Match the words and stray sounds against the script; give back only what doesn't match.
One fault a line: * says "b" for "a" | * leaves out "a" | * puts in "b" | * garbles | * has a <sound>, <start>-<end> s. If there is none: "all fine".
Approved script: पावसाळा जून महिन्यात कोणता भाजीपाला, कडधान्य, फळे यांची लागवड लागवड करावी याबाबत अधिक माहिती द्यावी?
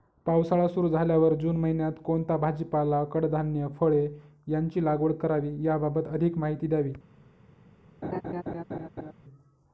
* puts in "सुरु झाल्यावर"
* leaves out "लागवड"
* has a laugh, 8.0-9.1 s